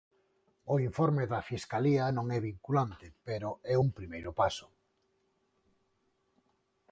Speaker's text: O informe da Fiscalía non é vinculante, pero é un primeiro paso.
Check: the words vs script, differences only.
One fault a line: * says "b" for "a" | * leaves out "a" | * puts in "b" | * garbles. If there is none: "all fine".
all fine